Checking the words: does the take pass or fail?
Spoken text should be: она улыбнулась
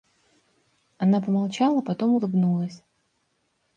fail